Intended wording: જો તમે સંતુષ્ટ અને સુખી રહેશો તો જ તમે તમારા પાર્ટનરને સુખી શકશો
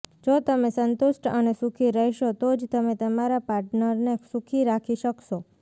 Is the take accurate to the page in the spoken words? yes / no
no